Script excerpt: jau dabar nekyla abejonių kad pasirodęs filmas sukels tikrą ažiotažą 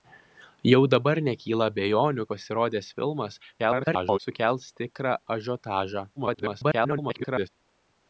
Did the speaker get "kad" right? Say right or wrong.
wrong